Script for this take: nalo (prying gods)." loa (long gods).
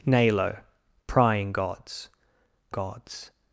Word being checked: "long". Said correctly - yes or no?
no